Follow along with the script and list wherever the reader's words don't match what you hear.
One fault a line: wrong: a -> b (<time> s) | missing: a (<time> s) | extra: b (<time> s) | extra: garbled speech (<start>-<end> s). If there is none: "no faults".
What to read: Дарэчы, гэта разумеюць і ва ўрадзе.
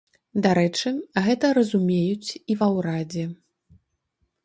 no faults